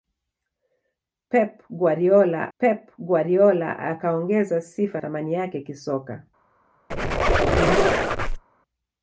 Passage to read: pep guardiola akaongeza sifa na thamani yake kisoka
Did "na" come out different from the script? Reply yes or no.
yes